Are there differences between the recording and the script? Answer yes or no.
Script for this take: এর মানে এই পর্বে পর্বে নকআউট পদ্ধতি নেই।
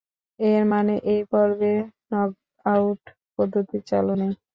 yes